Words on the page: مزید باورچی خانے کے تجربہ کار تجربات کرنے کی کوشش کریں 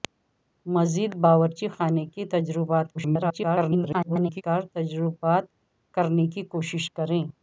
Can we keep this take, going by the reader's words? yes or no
no